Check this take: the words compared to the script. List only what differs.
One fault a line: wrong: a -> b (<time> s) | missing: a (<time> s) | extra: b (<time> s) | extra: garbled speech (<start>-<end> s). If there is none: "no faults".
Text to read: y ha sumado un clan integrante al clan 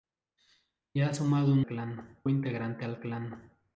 no faults